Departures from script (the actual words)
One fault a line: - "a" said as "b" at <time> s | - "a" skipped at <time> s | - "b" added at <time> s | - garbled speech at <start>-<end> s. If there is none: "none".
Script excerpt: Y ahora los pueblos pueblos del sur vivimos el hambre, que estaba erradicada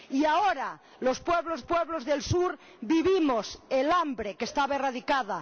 none